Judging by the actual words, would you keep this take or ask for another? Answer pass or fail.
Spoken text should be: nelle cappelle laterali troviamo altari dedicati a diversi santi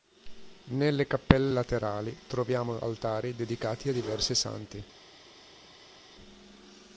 pass